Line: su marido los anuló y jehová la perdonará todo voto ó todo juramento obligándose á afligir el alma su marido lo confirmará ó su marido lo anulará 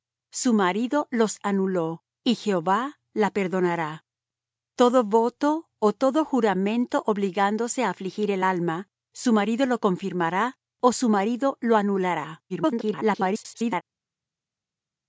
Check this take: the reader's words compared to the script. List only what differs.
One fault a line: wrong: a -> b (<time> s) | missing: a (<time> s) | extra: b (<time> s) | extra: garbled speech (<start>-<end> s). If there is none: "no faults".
extra: garbled speech (12.5-13.8 s)